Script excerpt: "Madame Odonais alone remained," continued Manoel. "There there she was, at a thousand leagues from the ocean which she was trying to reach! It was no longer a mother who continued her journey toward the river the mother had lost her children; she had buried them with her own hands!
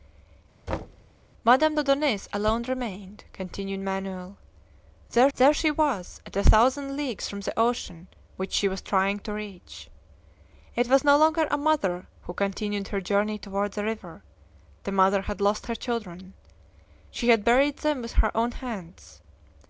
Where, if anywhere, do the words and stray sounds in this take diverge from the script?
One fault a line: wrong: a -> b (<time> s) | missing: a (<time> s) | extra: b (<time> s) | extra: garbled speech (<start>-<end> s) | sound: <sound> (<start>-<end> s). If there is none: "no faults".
sound: thud (0.7-1.0 s)